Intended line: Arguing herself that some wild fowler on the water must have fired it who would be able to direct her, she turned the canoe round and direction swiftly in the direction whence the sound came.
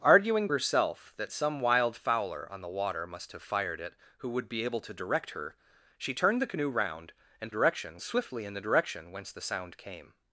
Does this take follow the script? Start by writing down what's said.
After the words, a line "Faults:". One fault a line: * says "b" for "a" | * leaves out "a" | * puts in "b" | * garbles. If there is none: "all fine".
Arguing herself that some wild fowler on the water must have fired it who would be able to direct her, she turned the canoe round and direction swiftly in the direction whence the sound came.
Faults:
all fine